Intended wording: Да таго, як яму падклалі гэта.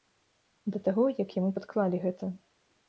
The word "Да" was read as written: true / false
true